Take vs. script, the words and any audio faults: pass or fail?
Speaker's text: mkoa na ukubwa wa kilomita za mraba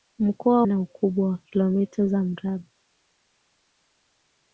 pass